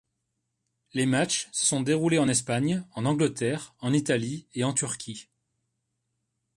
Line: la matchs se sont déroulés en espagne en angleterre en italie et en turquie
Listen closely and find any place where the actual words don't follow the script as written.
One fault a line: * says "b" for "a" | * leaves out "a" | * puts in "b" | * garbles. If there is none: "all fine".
* says "les" for "la"